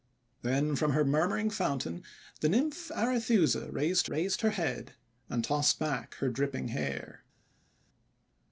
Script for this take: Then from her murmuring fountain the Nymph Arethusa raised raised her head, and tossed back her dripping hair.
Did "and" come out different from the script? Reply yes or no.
no